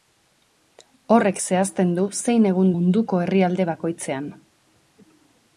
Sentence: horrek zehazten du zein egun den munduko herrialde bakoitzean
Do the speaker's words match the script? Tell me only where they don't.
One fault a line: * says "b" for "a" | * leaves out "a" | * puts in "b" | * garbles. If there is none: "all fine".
* leaves out "den"